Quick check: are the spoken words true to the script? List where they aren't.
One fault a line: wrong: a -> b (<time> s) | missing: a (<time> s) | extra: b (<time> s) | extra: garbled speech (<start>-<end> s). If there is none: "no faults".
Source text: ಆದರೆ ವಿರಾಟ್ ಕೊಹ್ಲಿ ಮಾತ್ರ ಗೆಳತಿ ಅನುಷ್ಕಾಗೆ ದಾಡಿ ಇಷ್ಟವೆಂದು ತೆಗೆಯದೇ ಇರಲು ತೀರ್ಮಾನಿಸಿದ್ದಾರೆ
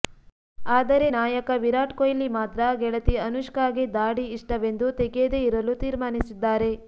extra: ನಾಯಕ (1.1 s)